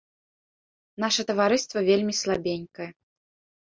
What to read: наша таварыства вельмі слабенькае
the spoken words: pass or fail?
pass